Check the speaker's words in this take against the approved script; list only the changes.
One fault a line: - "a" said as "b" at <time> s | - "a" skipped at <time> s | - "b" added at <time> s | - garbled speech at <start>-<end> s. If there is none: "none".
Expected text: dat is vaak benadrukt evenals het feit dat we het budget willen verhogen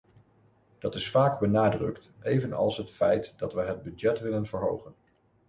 none